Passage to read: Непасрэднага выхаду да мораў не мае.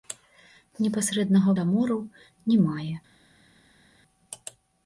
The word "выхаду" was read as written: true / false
false